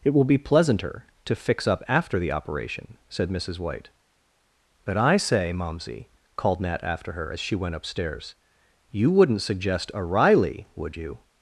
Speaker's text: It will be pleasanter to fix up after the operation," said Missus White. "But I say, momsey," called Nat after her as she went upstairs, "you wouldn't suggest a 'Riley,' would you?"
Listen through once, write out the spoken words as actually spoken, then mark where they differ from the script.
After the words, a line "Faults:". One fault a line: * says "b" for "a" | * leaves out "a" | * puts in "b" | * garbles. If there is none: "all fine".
It will be pleasanter to fix up after the operation," said Missus White. "But I say, momsey," called Nat after her as she went upstairs, "you wouldn't suggest a 'Riley,' would you?"
Faults:
all fine